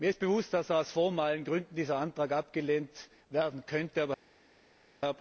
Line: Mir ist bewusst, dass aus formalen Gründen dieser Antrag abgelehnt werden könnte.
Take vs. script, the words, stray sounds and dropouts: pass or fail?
pass